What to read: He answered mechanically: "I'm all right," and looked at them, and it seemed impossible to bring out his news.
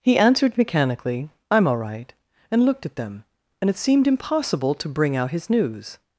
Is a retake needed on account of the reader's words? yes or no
no